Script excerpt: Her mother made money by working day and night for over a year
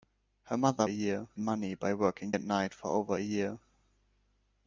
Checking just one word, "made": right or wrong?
wrong